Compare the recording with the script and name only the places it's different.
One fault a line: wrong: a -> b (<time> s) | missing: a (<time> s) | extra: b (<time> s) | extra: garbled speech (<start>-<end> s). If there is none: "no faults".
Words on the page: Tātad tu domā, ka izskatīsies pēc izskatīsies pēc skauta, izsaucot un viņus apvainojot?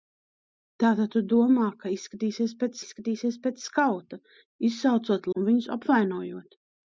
no faults